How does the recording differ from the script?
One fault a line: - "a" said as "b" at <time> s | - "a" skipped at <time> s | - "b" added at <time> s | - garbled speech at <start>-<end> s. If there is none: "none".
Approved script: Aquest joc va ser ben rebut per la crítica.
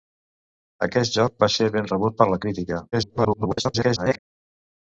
- garbled speech at 2.9-4.2 s